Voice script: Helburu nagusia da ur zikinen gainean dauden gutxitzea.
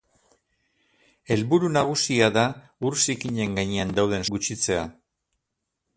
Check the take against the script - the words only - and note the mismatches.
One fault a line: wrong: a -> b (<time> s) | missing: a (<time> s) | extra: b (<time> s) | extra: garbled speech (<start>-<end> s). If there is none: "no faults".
no faults